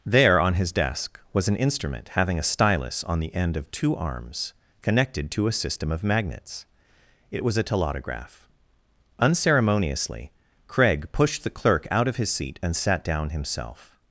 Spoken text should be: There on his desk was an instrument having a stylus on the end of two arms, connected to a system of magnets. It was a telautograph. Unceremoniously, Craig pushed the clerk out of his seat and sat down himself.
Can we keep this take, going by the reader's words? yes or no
yes